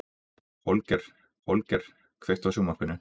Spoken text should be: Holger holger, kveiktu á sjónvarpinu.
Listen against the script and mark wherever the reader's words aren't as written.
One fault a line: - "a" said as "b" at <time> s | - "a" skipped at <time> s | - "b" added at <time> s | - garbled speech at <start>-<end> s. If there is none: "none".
none